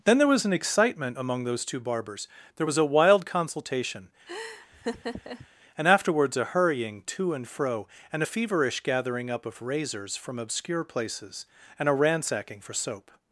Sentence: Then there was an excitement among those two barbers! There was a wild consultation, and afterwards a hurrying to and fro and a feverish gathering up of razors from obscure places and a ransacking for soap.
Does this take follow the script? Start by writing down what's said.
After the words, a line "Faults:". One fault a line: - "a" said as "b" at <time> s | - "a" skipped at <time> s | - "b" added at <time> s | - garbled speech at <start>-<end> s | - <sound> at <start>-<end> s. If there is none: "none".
Then there was an excitement among those two barbers! There was a wild consultation, and afterwards a hurrying to and fro and a feverish gathering up of razors from obscure places and a ransacking for soap.
Faults:
- laugh at 4.3-5.5 s